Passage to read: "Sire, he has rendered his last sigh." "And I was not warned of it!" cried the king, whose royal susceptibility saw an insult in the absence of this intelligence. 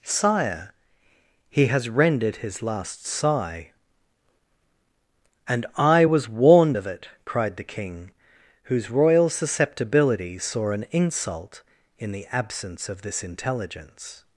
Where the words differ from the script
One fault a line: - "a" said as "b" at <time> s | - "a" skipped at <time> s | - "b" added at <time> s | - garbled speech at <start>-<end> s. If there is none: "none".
- "not" skipped at 6.3 s